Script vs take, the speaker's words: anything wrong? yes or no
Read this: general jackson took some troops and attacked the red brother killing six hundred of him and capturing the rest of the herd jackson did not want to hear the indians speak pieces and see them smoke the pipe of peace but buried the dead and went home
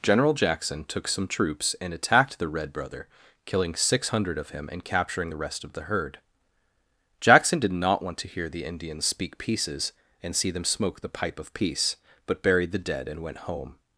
no